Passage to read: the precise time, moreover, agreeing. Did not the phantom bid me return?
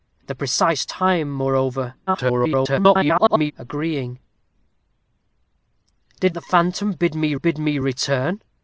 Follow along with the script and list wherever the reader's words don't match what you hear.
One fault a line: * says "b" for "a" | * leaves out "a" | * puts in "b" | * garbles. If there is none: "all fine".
* garbles
* leaves out "not"
* puts in "bid me"